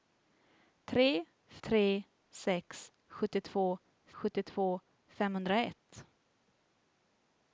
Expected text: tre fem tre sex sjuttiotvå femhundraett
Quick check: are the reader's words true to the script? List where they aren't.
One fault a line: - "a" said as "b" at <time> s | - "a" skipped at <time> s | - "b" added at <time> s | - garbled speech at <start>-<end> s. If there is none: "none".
- "fem" skipped at 1.0 s
- "sjuttiotvå" added at 4.2 s